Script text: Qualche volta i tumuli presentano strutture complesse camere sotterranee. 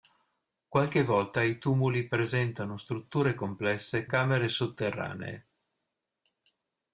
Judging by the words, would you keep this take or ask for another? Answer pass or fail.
pass